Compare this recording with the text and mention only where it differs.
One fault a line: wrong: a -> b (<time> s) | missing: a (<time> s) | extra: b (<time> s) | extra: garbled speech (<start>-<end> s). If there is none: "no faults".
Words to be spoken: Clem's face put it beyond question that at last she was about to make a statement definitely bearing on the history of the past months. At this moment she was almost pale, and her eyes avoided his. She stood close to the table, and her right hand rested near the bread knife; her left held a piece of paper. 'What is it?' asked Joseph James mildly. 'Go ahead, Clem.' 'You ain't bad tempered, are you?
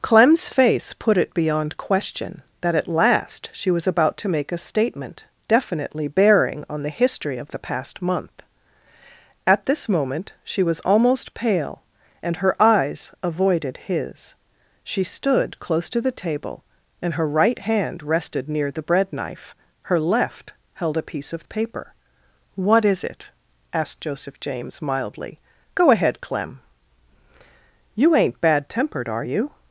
wrong: months -> month (8.0 s)